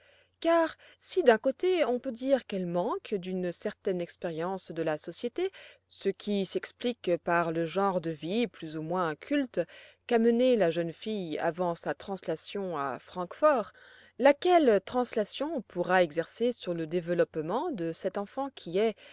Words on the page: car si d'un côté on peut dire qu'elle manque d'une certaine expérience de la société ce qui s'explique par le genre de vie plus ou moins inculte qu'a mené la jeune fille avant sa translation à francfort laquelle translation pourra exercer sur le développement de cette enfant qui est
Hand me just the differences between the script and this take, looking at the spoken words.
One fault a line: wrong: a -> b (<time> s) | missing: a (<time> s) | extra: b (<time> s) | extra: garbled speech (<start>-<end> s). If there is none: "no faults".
no faults